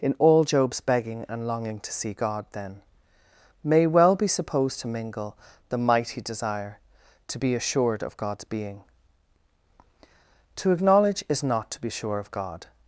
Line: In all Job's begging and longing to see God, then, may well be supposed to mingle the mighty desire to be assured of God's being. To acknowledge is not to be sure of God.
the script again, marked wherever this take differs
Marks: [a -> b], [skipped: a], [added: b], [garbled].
In all Job's begging and longing to see God, then, may well be supposed to mingle the mighty desire to be assured of God's being. To acknowledge is not to be sure of God.